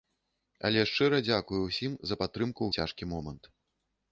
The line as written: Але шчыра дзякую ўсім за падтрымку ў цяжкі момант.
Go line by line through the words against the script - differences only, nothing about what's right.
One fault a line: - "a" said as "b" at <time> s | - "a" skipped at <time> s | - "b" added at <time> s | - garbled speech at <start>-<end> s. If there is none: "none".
none